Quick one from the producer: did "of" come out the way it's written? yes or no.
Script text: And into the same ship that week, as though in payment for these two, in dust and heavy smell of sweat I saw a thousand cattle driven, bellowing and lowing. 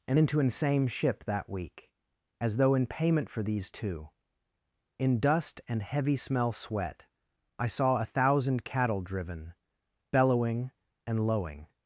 no